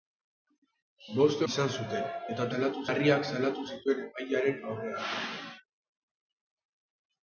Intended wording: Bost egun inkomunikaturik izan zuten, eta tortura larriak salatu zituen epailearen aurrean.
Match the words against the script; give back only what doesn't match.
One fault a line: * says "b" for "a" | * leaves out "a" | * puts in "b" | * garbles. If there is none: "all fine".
* leaves out "egun inkomunikaturik"
* says "salatu" for "tortura"